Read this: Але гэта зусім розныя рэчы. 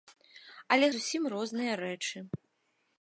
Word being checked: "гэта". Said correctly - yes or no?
no